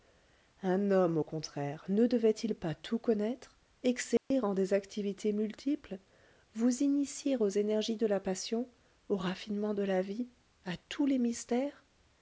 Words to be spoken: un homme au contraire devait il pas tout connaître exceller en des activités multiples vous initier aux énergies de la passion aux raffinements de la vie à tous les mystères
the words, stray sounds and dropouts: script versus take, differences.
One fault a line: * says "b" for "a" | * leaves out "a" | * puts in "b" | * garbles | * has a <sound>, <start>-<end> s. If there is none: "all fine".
* puts in "ne"
* has a dropout, 4.2-4.3 s